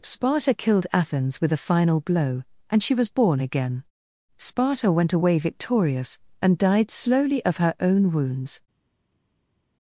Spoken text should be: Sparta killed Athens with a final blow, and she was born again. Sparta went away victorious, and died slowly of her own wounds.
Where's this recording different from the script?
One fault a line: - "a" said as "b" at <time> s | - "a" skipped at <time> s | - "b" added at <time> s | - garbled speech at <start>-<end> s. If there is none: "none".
none